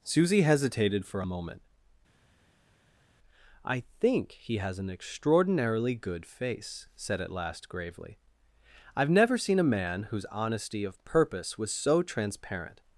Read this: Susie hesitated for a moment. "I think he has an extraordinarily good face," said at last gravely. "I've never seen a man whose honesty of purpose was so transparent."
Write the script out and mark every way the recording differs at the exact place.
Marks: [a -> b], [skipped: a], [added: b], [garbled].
Susie hesitated for a moment. "I think he has an extraordinarily good face," said at last gravely. "I've never seen a man whose honesty of purpose was so transparent."